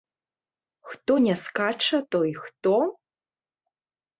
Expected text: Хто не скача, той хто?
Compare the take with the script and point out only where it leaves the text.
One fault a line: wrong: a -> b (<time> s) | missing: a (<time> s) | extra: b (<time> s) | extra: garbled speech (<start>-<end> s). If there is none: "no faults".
no faults